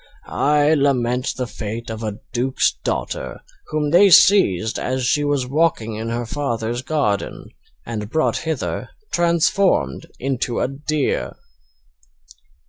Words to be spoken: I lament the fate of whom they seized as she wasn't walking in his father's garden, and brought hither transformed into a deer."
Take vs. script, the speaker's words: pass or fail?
fail